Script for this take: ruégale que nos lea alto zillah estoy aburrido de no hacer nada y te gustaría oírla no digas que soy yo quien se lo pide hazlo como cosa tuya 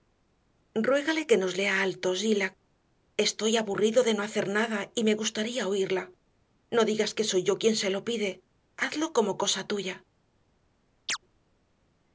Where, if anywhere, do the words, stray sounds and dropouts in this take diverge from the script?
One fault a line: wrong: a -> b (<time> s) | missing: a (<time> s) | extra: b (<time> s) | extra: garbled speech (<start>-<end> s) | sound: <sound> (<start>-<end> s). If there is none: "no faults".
wrong: te -> me (5.1 s)
sound: chirp (11.1-11.2 s)